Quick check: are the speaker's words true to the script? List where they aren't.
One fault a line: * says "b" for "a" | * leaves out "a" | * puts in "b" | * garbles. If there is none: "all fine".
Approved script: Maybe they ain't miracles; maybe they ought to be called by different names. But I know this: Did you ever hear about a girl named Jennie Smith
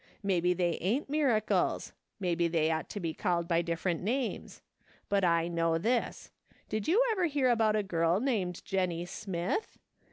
all fine